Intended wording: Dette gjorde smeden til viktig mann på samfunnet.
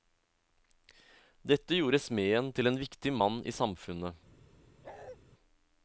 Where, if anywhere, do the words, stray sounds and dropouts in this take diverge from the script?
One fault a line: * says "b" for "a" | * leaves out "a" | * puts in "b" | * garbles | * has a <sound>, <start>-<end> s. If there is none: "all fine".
* puts in "en"
* says "i" for "på"
* has a bark, 4.8-5.2 s